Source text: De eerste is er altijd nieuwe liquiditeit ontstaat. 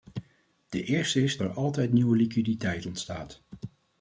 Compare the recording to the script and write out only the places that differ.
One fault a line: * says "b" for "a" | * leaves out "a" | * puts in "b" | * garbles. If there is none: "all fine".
all fine